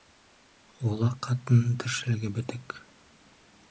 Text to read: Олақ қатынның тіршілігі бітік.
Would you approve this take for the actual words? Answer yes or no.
yes